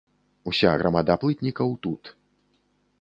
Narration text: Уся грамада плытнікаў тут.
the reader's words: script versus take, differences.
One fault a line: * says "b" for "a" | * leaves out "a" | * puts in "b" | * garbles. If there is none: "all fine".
all fine